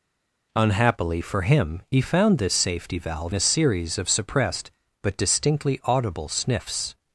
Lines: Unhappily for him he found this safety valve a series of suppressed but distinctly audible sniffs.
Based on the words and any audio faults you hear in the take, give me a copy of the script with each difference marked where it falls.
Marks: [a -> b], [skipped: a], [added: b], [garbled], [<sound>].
Unhappily for him he found this safety valve a series of suppressed but distinctly audible sniffs.